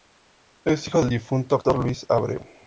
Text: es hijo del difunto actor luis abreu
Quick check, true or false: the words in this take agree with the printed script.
true